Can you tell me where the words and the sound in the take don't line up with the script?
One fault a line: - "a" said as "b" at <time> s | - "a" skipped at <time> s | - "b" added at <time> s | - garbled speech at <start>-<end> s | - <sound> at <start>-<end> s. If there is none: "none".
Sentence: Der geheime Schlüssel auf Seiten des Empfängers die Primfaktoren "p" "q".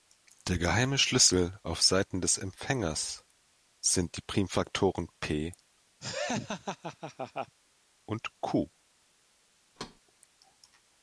- "sind" added at 3.8 s
- laugh at 6.0-7.6 s
- "und" added at 8.1 s
- thud at 9.8-10.0 s